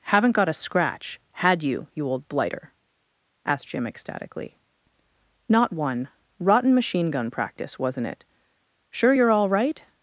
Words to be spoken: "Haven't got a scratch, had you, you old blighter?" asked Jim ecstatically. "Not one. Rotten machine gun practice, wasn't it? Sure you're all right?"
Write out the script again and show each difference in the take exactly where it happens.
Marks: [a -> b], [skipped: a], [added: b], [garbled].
"Haven't got a scratch, had you, you old blighter?" asked Jim ecstatically. "Not one. Rotten machine gun practice, wasn't it? Sure you're all right?"